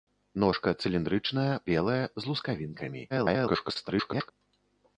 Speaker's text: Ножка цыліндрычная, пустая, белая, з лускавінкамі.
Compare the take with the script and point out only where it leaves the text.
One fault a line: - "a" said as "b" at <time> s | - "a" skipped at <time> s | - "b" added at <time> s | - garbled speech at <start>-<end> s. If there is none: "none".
- "пустая" skipped at 1.5 s
- garbled speech at 3.1-4.3 s